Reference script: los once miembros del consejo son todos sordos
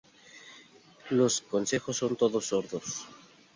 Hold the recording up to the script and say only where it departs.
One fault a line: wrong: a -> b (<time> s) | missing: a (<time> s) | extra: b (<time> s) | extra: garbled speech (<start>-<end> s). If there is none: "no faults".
missing: once miembros del (1.4 s)